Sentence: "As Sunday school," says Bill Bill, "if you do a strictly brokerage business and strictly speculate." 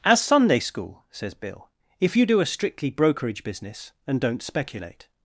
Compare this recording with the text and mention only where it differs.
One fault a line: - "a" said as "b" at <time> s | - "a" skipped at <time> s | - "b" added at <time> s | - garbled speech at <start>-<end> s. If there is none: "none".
- "Bill" skipped at 1.7 s
- "strictly" said as "don't" at 4.2 s